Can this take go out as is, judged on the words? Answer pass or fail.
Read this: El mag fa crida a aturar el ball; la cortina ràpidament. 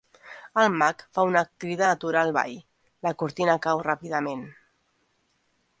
fail